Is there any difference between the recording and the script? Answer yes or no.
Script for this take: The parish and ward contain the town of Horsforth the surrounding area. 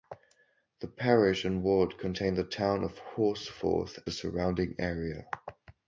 no